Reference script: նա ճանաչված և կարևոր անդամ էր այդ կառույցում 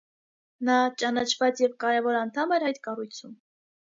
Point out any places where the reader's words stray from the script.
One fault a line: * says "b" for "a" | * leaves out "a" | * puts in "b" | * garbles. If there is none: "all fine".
all fine